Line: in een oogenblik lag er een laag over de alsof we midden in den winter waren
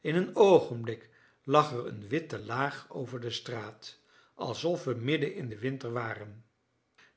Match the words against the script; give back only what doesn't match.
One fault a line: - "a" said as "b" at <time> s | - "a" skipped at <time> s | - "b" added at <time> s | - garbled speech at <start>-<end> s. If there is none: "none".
- "witte" added at 2.1 s
- "straat" added at 3.3 s